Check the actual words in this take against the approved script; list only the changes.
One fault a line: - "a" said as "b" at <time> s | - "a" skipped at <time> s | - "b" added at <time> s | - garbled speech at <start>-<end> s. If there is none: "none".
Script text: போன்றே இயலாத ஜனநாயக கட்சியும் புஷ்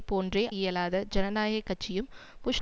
none